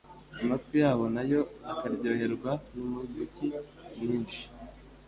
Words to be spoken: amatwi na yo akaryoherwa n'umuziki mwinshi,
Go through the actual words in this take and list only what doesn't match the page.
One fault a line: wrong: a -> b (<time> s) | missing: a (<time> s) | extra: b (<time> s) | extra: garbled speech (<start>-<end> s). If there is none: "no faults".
extra: yabo (0.8 s)